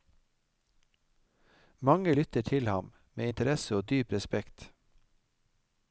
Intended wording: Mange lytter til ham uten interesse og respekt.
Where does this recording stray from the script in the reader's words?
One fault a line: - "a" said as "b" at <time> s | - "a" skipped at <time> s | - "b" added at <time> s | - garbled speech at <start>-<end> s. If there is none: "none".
- "uten" said as "med" at 3.1 s
- "dyp" added at 3.9 s